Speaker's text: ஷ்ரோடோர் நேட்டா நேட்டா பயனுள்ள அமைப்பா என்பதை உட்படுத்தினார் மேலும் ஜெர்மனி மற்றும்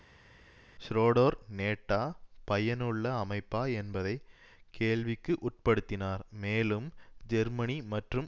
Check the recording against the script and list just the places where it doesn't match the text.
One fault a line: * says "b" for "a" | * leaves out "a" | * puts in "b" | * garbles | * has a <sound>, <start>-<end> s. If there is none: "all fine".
* leaves out "நேட்டா"
* puts in "கேள்விக்கு"